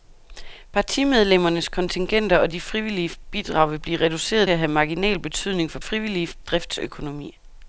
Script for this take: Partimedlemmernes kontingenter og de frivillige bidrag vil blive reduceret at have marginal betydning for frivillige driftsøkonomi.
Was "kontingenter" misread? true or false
false